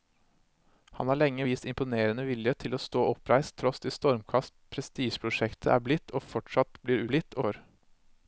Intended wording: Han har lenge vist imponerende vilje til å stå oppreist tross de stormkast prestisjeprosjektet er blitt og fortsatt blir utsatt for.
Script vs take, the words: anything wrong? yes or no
yes